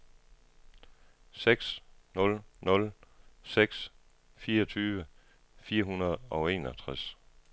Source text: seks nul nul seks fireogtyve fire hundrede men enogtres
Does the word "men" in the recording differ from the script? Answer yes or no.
yes